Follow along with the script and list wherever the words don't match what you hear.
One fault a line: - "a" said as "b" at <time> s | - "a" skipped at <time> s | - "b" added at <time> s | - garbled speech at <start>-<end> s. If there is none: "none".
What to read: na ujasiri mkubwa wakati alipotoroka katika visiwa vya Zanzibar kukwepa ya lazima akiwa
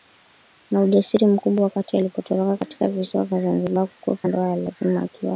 - "ndoa" added at 4.2 s